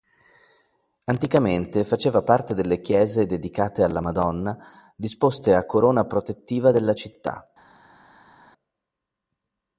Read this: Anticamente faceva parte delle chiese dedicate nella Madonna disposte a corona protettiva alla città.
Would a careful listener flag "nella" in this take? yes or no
yes